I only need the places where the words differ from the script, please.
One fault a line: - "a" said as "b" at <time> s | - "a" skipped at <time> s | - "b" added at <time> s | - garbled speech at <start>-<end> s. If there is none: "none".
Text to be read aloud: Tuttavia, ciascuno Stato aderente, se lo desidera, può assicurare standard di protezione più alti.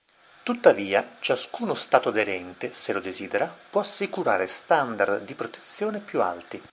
none